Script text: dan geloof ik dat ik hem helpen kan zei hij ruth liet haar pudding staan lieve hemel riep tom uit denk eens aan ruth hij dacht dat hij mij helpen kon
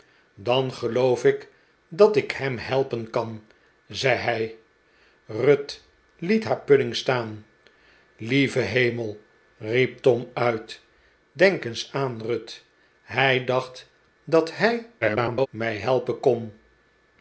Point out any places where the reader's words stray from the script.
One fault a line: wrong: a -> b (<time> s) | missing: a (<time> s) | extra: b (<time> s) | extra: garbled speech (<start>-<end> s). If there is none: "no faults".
extra: garbled speech (15.0-15.5 s)